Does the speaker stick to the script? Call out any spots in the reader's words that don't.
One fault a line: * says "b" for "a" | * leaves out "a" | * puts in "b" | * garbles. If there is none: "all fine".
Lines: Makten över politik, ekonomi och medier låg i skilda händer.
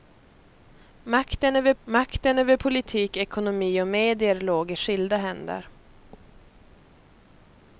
* puts in "makten över"